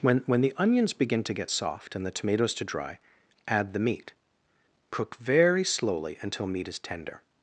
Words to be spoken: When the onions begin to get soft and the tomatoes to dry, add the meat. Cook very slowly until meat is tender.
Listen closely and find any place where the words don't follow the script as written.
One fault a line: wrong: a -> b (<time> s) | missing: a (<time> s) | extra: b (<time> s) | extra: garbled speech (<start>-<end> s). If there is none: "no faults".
extra: when (0.2 s)